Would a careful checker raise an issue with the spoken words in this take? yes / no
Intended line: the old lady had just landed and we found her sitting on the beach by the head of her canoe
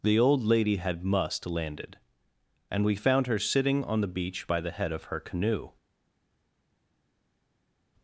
yes